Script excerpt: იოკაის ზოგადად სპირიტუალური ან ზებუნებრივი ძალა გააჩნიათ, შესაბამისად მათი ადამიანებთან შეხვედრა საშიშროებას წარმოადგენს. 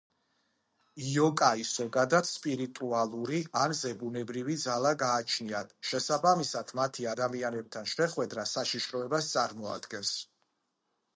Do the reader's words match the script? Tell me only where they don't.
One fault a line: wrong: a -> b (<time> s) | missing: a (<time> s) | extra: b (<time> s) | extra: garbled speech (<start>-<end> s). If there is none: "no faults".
no faults